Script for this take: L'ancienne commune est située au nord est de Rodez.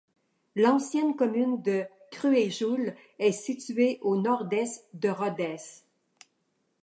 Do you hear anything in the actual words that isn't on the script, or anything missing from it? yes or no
yes